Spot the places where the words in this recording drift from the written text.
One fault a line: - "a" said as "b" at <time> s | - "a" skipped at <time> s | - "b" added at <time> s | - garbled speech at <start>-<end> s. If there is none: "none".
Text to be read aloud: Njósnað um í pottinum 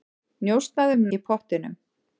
none